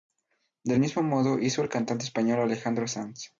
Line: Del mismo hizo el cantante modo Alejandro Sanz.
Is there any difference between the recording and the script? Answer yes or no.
yes